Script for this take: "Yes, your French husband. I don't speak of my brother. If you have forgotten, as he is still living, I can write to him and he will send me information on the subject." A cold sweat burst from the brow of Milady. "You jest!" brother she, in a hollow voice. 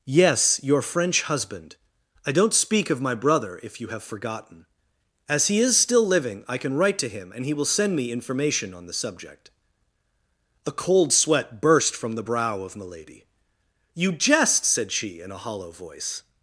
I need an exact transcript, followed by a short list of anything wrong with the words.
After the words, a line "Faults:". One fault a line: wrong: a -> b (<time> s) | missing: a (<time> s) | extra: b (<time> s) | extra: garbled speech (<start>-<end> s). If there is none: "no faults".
"Yes, your French husband. I don't speak of my brother. If you have forgotten, as he is still living, I can write to him and he will send me information on the subject." A cold sweat burst from the brow of Milady. "You jest!" said she, in a hollow voice.
Faults:
wrong: brother -> said (14.6 s)